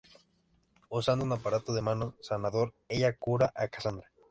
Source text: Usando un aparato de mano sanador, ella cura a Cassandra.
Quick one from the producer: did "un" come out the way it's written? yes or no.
yes